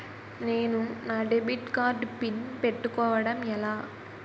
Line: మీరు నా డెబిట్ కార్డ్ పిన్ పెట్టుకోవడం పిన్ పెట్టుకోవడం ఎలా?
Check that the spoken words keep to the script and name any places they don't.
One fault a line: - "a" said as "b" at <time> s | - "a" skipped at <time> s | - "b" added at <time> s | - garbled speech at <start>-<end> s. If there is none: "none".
- "మీరు" said as "నేను" at 0.4 s
- "పిన్ పెట్టుకోవడం" skipped at 3.4 s